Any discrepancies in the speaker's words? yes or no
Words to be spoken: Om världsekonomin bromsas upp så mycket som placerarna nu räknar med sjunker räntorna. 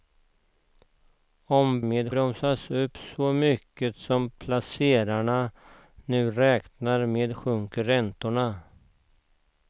yes